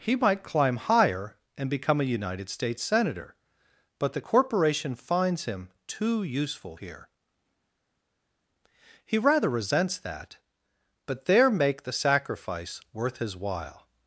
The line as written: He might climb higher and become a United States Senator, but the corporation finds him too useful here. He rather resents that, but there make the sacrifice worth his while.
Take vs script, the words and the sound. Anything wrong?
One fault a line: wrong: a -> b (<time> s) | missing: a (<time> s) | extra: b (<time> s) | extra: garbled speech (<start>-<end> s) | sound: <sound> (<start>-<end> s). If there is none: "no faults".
no faults